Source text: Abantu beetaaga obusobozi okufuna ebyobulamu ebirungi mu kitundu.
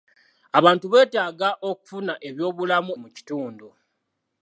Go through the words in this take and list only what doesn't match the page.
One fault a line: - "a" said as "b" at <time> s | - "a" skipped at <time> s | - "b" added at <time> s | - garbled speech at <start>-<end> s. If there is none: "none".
- "obusobozi" skipped at 1.5 s
- "ebirungi" skipped at 2.9 s